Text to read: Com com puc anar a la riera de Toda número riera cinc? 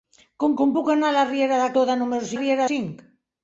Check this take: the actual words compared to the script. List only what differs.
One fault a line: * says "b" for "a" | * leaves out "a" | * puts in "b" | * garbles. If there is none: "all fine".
all fine